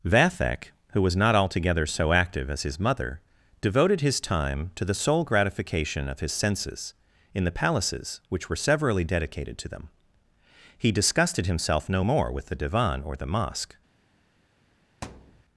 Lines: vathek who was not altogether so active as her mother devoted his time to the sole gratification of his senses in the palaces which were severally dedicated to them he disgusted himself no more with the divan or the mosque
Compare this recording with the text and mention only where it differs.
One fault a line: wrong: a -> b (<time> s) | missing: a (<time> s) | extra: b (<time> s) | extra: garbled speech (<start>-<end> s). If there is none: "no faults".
wrong: her -> his (2.6 s)